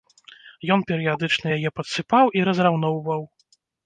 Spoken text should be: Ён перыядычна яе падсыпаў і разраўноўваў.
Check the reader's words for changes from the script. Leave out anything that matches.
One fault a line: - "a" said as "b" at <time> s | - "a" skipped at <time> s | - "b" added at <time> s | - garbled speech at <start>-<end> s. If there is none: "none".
none